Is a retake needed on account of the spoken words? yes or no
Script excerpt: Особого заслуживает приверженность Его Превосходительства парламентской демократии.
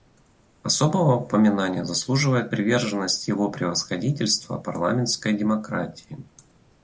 yes